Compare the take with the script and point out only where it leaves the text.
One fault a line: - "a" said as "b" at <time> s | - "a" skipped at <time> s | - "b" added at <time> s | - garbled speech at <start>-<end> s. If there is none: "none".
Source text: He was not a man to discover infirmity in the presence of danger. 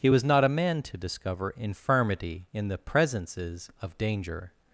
- "presence" said as "presences" at 2.8 s